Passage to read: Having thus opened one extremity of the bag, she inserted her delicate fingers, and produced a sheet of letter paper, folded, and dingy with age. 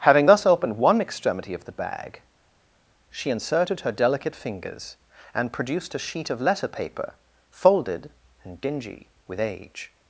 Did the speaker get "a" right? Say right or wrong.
right